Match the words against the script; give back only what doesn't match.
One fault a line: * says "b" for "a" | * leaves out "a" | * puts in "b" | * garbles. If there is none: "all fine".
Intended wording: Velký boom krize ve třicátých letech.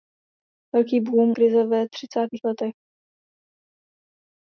all fine